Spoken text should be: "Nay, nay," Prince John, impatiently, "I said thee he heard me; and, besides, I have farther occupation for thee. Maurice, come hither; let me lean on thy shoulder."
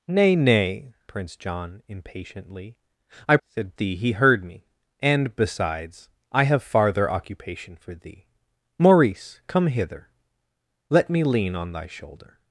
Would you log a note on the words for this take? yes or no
no